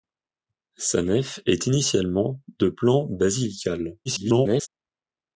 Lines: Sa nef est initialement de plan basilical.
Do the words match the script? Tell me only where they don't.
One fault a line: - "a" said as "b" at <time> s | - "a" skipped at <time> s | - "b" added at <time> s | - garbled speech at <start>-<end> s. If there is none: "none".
- garbled speech at 4.1-4.7 s